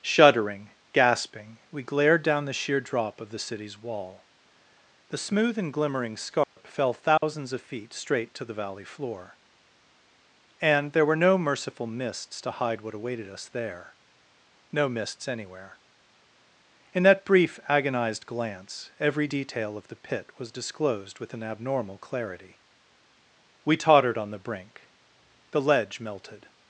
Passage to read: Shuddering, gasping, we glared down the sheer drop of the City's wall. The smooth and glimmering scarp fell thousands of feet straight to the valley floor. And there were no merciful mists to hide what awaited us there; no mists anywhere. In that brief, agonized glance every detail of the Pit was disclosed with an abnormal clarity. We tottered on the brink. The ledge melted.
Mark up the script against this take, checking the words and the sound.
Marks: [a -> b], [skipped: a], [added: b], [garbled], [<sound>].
Shuddering, gasping, we glared down the sheer drop of the City's wall. The smooth and glimmering scarp [dropout] fell thousands [dropout] of feet straight to the valley floor. And there were no merciful mists to hide what awaited us there; no mists anywhere. In that brief, agonized glance every detail of the Pit was disclosed with an abnormal clarity. We tottered on the brink. The ledge melted.